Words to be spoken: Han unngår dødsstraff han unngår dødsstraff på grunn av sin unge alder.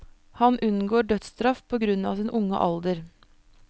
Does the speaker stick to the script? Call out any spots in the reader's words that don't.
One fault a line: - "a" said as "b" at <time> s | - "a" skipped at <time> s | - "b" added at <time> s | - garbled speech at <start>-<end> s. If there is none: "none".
- "han unngår dødsstraff" skipped at 1.6 s